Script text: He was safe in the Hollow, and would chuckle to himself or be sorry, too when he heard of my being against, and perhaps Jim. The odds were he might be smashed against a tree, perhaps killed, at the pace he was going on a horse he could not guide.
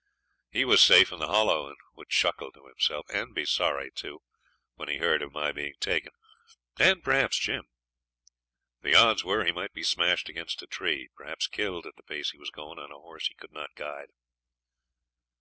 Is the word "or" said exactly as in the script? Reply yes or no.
no